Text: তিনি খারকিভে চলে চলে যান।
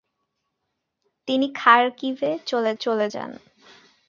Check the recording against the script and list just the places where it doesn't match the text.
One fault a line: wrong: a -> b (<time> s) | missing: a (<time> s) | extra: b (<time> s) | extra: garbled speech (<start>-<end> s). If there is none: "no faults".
no faults